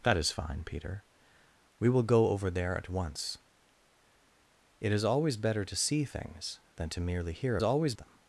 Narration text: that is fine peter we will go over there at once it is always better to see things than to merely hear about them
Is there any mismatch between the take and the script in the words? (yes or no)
yes